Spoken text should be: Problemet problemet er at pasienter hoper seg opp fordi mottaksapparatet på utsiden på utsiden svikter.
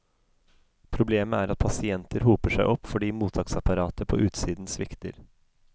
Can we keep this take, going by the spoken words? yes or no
no